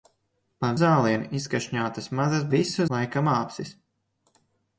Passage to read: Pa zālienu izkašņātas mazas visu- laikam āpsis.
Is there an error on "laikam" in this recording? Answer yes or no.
no